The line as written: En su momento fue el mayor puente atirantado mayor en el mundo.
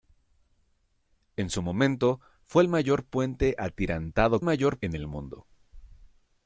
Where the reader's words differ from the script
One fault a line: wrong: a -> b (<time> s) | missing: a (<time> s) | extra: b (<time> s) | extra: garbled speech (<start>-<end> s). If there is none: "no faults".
no faults